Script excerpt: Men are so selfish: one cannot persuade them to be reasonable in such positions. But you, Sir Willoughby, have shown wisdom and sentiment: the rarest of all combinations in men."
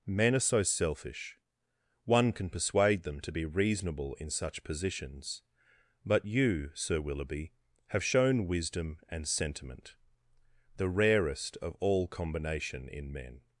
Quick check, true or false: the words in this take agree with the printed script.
false